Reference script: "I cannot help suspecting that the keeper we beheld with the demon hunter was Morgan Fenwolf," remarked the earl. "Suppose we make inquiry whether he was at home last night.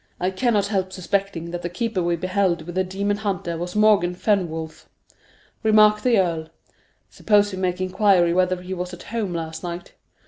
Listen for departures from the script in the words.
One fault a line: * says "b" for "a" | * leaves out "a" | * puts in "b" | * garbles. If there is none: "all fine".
all fine